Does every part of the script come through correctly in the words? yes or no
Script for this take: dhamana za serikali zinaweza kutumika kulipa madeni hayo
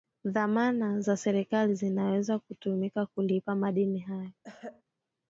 yes